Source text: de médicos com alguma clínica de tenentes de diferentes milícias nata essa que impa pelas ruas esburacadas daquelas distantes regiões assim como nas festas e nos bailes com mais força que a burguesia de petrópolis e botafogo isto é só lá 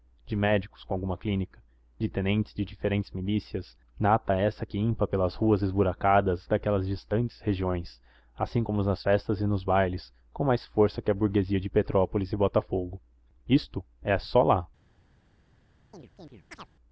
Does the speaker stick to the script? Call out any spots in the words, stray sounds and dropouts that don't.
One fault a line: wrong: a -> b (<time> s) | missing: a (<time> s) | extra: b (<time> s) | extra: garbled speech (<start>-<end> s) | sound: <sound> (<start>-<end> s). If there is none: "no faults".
sound: chirp (15.9-16.7 s)